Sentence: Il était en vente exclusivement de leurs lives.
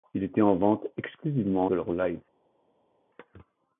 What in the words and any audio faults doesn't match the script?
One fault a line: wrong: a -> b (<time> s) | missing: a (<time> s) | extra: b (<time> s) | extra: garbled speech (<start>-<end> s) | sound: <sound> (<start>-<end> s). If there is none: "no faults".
no faults